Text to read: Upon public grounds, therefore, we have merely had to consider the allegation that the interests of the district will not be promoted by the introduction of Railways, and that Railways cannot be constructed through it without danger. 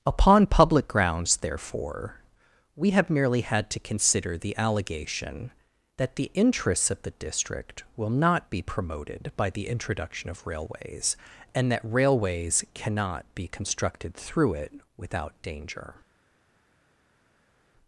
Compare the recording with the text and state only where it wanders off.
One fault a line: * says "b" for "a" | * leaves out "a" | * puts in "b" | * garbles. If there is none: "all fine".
all fine